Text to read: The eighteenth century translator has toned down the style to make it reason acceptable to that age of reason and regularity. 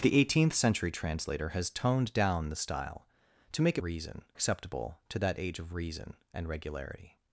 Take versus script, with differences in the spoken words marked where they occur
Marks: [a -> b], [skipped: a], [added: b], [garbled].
The eighteenth century translator has toned down the style to make it reason acceptable to that age of reason and regularity.